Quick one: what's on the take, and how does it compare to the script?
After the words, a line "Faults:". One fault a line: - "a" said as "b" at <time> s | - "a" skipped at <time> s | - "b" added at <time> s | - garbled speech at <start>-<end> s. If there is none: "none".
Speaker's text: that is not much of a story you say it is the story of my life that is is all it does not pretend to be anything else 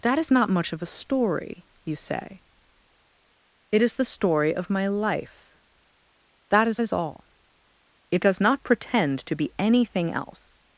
that is not much of a story you say it is the story of my life that is is all it does not pretend to be anything else
Faults:
none